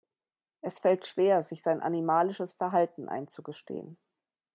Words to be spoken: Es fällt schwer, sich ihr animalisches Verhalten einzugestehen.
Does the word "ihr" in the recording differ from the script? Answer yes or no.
yes